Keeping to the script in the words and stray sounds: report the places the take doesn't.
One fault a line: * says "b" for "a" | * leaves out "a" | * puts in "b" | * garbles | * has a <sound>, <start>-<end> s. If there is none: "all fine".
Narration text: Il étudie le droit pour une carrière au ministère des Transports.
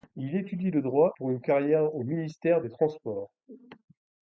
all fine